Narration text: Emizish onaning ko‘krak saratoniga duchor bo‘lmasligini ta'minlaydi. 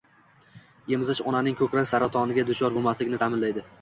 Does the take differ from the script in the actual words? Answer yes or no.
no